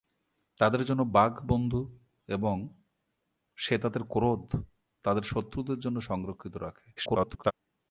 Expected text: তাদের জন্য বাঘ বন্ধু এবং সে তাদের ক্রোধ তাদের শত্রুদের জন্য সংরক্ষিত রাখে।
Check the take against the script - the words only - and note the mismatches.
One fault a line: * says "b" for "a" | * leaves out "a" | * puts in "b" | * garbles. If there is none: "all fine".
* garbles